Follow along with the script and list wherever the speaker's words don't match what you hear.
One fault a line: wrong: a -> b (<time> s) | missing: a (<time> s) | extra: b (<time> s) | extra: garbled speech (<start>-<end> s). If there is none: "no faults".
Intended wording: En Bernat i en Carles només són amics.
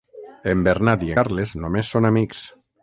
missing: en (1.1 s)